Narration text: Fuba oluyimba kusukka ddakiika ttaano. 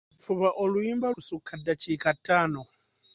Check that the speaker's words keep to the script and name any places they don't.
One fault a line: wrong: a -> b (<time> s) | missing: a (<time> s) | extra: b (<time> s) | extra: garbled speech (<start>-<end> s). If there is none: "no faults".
no faults